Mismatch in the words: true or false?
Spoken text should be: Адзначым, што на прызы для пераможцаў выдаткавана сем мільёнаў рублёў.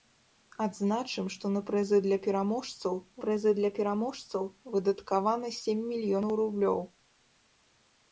true